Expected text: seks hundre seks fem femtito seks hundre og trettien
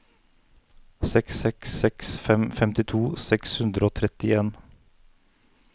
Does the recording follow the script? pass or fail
fail